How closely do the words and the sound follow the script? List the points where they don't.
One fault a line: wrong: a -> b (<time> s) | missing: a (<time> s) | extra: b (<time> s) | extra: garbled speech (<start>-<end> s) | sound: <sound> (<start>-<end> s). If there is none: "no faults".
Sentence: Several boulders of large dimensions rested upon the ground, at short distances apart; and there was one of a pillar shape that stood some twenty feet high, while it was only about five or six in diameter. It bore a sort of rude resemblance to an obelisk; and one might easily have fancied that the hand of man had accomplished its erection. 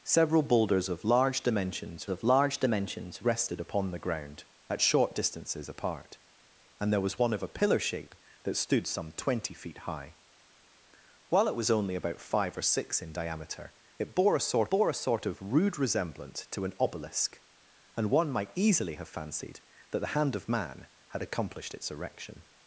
extra: of large dimensions (2.1 s)
extra: bore a sort (14.7 s)